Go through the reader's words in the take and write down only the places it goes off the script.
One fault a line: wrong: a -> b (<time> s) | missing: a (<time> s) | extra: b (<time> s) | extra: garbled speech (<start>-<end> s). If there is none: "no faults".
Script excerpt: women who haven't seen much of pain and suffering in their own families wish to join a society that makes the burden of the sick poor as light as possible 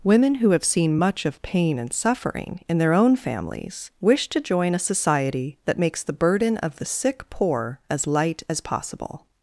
wrong: haven't -> have (0.5 s)